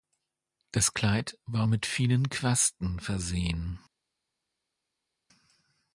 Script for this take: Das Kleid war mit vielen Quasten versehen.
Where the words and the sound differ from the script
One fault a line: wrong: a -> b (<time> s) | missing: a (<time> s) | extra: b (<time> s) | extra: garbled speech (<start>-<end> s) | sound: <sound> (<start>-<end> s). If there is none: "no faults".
no faults